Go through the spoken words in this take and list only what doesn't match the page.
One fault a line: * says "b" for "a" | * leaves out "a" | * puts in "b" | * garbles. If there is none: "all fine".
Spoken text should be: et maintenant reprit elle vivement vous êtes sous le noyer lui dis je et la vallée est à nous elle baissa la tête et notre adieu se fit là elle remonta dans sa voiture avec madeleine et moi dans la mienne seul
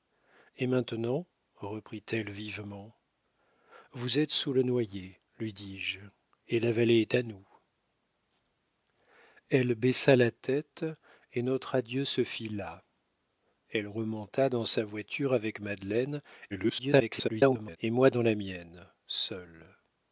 * garbles